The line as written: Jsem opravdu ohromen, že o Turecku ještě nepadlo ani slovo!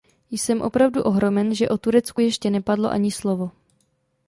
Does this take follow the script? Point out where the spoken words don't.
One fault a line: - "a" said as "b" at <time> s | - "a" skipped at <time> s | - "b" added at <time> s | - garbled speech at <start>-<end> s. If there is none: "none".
none